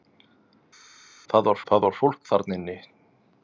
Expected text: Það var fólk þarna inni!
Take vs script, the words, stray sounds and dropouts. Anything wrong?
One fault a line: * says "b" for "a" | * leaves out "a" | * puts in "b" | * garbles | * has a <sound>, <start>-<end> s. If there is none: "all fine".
* puts in "það var"